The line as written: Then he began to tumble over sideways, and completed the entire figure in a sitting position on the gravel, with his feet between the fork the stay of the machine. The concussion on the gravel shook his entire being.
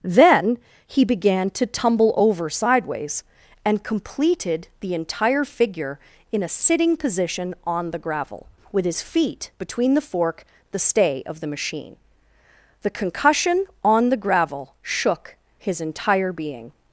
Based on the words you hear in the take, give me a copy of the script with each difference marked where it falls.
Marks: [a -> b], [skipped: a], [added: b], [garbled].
Then he began to tumble over sideways, and completed the entire figure in a sitting position on the gravel, with his feet between the fork the stay of the machine. The concussion on the gravel shook his entire being.